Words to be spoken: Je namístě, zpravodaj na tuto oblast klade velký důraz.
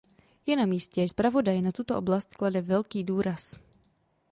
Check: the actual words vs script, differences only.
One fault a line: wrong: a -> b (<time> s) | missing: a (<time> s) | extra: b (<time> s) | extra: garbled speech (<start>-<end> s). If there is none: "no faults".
no faults